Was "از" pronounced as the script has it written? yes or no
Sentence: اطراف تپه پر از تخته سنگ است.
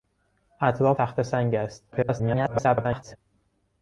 no